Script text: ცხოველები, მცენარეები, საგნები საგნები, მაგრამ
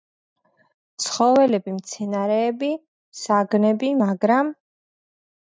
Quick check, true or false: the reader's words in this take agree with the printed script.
false